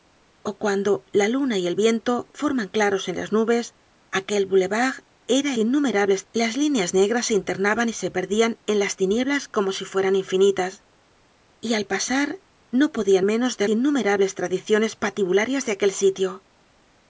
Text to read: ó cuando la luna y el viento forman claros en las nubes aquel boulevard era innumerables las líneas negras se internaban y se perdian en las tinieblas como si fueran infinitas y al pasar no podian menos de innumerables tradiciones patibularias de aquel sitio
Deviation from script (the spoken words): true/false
false